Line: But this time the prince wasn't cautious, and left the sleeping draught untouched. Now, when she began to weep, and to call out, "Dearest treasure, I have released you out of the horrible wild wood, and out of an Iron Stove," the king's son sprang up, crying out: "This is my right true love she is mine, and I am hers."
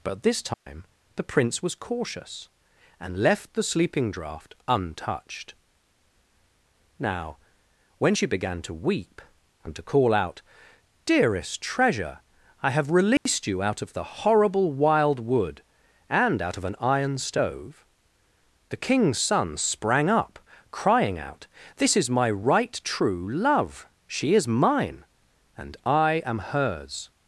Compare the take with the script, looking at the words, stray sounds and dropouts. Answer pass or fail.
fail